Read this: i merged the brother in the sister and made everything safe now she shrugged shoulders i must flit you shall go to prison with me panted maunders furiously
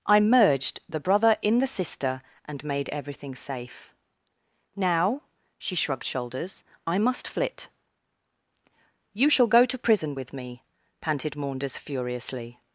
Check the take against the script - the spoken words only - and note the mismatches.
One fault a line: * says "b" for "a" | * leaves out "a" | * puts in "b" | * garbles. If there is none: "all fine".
all fine